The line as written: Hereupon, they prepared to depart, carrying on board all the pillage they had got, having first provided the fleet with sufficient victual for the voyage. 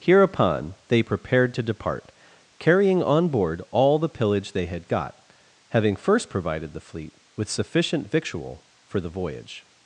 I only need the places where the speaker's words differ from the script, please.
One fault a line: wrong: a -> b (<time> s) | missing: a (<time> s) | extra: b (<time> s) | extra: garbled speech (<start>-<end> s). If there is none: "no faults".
no faults